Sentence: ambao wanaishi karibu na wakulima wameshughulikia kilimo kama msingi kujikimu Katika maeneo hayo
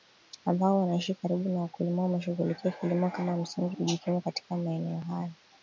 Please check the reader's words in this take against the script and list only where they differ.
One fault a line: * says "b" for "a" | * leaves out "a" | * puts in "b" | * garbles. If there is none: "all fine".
all fine